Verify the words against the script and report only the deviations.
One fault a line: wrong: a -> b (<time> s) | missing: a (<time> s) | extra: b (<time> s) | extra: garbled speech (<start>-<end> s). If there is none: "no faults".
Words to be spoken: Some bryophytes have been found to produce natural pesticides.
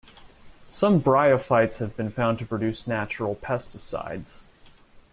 no faults